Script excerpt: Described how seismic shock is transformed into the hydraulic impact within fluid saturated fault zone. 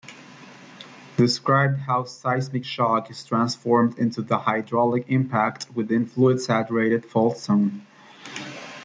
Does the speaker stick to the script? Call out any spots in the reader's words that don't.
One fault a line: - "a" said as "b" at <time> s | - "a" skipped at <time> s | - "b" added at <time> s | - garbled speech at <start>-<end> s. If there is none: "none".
none